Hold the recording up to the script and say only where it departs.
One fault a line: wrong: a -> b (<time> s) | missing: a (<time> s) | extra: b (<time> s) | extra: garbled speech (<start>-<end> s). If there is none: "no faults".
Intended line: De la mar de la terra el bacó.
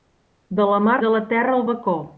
no faults